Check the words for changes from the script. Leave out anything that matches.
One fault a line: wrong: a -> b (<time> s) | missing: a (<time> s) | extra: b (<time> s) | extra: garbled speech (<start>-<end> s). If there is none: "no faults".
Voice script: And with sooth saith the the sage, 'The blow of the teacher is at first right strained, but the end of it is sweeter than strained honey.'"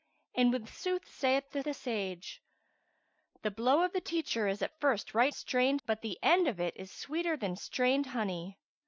no faults